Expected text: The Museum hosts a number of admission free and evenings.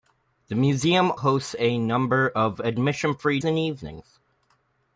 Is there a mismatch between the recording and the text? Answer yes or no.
no